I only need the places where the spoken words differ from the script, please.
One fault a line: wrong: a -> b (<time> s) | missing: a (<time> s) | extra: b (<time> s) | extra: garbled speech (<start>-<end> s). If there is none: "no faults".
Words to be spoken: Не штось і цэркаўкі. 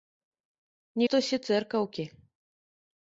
no faults